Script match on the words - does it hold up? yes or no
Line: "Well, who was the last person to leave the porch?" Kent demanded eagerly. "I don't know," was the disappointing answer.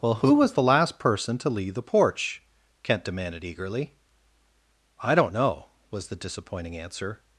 yes